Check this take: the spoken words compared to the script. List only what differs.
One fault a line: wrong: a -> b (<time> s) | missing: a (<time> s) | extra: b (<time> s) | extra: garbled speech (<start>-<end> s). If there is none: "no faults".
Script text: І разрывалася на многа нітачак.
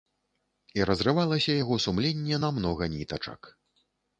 extra: яго сумленне (1.6 s)